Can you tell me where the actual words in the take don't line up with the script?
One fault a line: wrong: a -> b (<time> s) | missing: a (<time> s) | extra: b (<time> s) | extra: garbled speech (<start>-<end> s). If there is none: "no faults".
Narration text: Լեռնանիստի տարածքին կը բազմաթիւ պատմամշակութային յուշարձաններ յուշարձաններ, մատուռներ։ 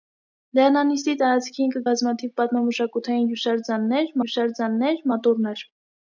no faults